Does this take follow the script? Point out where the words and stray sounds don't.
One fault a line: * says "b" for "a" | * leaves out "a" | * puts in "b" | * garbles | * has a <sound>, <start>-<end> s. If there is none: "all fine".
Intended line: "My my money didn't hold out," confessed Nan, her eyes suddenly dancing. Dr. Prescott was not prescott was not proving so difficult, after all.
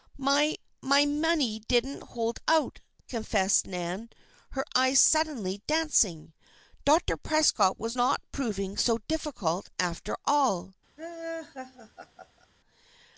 * leaves out "prescott was not"
* has a laugh, 11.0-12.5 s